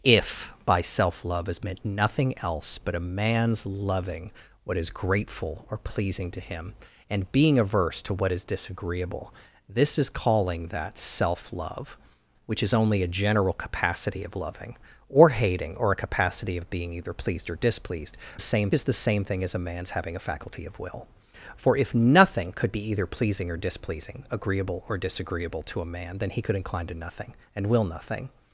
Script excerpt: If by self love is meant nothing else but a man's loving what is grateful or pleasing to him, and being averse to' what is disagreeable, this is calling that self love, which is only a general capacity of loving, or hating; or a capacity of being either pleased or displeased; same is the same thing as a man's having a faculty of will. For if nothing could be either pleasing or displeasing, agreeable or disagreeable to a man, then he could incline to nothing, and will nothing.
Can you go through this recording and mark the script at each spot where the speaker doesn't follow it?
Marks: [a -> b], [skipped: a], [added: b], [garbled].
If by self love is meant nothing else but a man's loving what is grateful or pleasing to him, and being averse to' what is disagreeable, this is calling that self love, which is only a general capacity of loving, or hating; or a capacity of being either pleased or displeased; same is the same thing as a man's having a faculty of will. For if nothing could be either pleasing or displeasing, agreeable or disagreeable to a man, then he could incline to nothing, and will nothing.